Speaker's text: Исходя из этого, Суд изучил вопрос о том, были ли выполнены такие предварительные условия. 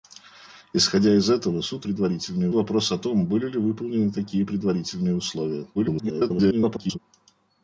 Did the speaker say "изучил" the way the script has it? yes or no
no